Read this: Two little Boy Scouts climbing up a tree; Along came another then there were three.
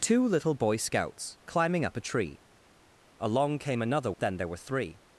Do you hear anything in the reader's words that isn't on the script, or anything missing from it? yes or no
no